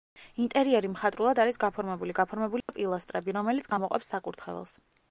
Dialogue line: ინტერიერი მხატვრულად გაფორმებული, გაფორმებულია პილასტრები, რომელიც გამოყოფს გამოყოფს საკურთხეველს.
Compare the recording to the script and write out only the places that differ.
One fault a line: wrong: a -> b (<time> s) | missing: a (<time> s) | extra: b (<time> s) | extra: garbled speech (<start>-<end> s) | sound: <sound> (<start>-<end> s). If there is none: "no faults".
extra: არის (1.4 s)
sound: dropout (2.6-2.7 s)
missing: გამოყოფს (4.2 s)